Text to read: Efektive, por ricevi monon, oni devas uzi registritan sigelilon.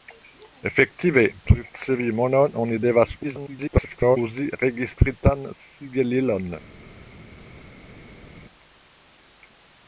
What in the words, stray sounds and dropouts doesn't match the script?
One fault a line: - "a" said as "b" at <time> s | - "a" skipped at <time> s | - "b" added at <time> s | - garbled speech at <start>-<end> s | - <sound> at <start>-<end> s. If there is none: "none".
- "por" skipped at 1.2 s
- garbled speech at 3.2-4.2 s